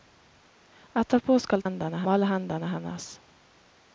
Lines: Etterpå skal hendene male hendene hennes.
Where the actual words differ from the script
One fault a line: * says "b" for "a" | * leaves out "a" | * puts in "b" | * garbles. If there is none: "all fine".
all fine